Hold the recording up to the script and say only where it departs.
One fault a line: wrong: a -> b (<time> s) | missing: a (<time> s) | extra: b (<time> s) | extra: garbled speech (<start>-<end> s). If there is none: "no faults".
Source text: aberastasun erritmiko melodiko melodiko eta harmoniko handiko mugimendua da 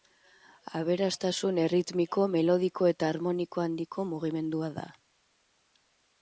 missing: melodiko (2.9 s)